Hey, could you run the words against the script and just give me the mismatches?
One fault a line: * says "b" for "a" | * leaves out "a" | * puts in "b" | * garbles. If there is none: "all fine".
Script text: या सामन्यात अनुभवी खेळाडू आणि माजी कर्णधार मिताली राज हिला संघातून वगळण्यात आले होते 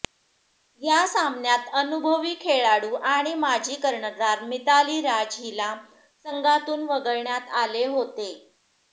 all fine